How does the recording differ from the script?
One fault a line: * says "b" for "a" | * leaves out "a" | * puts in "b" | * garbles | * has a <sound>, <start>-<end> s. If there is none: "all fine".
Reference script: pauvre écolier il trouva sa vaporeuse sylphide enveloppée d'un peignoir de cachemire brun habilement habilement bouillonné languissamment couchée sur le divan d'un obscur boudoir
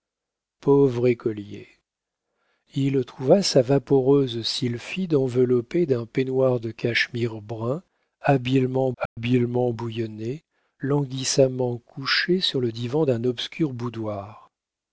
* has a dropout, 9.1-9.2 s